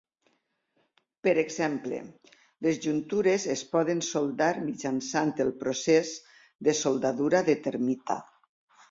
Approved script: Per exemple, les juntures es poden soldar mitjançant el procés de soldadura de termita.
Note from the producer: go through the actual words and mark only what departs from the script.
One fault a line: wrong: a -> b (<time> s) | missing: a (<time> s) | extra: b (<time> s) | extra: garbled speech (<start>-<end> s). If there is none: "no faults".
no faults